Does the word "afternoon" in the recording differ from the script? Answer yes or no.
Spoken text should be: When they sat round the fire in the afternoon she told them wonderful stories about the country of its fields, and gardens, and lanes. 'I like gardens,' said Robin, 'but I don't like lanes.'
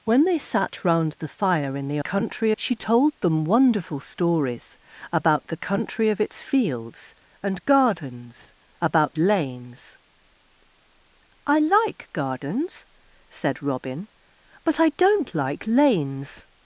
yes